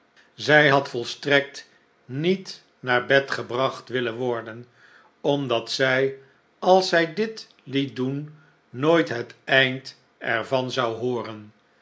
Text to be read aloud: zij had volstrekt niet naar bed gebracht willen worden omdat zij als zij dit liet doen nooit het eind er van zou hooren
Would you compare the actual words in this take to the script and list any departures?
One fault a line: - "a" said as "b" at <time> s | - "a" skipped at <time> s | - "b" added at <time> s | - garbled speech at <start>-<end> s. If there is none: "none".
none